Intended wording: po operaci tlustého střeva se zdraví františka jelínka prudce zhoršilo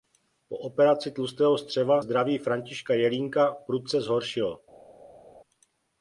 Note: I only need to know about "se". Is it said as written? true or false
false